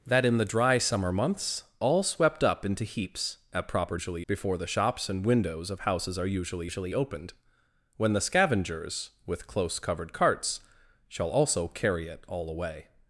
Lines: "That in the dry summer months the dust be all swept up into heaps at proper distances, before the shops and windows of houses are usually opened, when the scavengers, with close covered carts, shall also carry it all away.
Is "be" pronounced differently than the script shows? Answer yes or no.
yes